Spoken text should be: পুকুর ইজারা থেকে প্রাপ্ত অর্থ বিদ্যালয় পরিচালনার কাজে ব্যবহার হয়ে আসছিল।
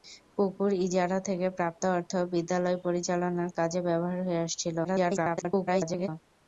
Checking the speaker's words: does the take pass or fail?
fail